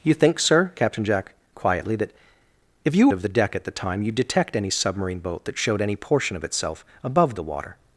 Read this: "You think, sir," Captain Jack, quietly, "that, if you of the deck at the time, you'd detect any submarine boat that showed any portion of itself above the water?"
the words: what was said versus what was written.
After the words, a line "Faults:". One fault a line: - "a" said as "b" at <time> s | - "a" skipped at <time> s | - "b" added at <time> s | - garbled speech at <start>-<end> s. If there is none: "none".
"You think, sir," Captain Jack, quietly, "that, if you of the deck at the time, you'd detect any submarine boat that showed any portion of itself above the water?"
Faults:
none